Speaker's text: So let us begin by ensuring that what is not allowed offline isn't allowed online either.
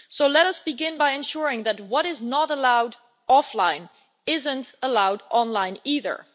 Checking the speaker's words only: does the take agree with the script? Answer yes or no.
yes